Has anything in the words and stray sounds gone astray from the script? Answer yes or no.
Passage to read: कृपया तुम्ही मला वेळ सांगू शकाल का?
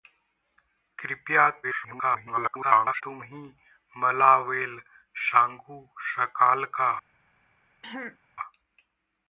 yes